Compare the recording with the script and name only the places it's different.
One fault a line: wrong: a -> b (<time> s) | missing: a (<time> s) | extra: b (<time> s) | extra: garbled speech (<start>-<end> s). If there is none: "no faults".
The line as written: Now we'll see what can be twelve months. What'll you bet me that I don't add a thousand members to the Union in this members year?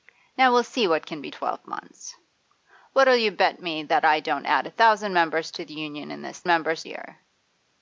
no faults